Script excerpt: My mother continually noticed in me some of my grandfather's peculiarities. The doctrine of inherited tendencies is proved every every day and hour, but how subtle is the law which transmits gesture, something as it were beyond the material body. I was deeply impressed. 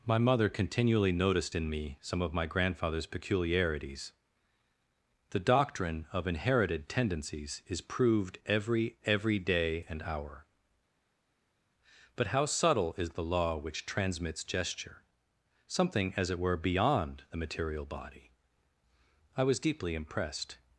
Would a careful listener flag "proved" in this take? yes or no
no